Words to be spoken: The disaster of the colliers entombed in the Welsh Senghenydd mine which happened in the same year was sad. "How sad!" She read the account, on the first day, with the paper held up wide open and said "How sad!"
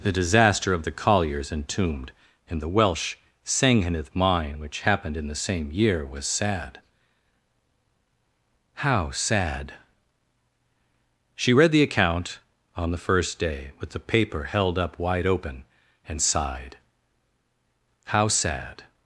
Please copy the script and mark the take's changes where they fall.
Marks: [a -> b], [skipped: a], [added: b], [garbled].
The disaster of the colliers entombed in the Welsh Senghenydd mine which happened in the same year was sad. "How sad!" She read the account, on the first day, with the paper held up wide open and [said -> sighed] "How sad!"